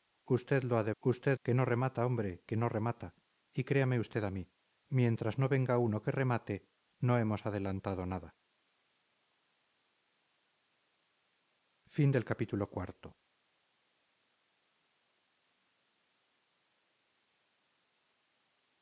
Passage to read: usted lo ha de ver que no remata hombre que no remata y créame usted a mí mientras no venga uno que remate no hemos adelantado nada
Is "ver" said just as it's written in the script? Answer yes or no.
no